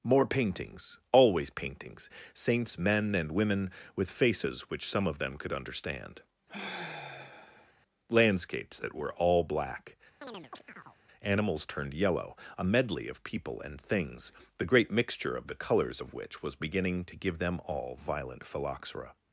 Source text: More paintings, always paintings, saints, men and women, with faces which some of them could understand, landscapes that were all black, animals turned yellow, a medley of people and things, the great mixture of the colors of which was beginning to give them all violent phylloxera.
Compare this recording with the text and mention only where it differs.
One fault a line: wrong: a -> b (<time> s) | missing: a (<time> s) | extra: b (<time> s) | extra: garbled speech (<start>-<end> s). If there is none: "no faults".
no faults